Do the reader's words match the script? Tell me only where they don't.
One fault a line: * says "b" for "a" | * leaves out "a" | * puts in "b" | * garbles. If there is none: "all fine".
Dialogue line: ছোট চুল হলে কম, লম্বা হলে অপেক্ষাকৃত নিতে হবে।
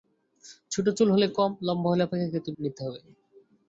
all fine